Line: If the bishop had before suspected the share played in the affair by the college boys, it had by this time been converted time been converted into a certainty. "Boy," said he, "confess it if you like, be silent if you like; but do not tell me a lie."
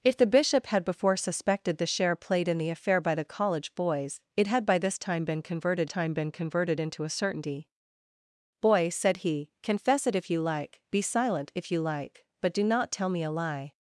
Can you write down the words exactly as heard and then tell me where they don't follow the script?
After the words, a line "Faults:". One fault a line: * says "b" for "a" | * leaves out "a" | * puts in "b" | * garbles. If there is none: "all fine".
If the bishop had before suspected the share played in the affair by the college boys, it had by this time been converted time been converted into a certainty. "Boy," said he, "confess it if you like, be silent if you like; but do not tell me a lie."
Faults:
all fine